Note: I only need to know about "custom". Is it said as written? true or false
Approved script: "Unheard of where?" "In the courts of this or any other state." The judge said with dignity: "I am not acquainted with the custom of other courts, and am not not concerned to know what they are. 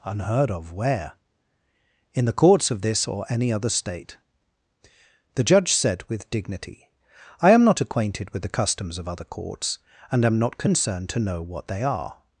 false